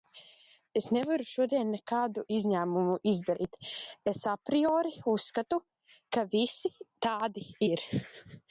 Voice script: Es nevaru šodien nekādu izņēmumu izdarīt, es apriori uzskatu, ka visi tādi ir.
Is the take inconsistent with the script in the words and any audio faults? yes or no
no